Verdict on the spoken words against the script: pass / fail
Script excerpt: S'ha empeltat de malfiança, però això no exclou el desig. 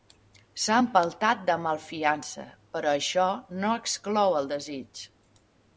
pass